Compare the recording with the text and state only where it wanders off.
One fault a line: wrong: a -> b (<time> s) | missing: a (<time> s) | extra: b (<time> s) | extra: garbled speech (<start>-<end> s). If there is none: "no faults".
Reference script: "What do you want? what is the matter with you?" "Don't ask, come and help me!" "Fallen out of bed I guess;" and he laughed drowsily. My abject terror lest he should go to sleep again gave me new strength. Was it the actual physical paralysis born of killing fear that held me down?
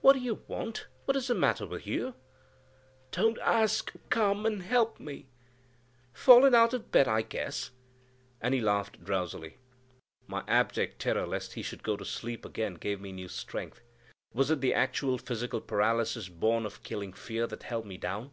no faults